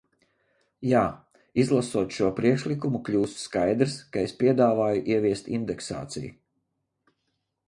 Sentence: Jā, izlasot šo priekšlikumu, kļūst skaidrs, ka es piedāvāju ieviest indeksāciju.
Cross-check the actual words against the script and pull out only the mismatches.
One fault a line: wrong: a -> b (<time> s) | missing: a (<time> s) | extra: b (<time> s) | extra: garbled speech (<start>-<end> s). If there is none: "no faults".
no faults